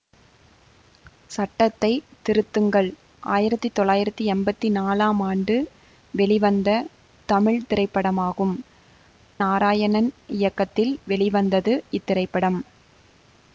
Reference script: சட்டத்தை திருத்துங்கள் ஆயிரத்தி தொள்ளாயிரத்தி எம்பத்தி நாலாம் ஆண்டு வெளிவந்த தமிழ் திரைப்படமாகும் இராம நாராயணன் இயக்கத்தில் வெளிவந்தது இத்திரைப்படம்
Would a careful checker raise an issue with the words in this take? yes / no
yes